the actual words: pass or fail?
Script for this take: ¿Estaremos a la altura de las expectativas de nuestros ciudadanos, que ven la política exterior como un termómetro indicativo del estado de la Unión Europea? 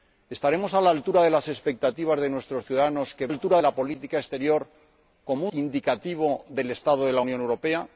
fail